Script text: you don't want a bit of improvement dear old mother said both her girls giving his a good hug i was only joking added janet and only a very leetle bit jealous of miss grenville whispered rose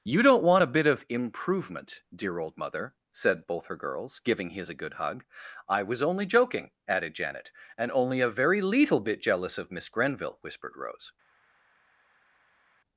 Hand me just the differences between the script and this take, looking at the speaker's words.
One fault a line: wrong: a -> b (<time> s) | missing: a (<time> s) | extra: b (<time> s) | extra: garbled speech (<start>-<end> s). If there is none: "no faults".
no faults